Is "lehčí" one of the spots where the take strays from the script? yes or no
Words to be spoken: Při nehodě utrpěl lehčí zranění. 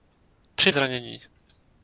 yes